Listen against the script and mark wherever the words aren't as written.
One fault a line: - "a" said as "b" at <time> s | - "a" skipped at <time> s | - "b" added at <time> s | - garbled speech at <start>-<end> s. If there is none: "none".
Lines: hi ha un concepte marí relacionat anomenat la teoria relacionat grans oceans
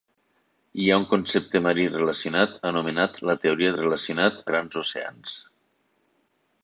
none